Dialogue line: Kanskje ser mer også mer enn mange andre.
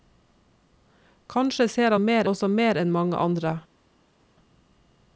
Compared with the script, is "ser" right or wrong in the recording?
right